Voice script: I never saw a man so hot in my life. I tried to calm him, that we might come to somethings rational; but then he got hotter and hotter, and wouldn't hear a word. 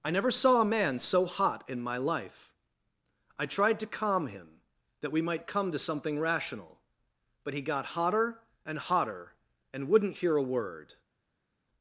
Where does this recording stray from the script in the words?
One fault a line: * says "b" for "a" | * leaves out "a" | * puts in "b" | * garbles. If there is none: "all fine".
* says "something" for "somethings"
* leaves out "then"